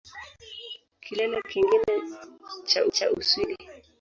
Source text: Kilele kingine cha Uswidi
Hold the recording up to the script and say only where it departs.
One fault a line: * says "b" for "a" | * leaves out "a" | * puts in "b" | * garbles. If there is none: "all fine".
* puts in "cha"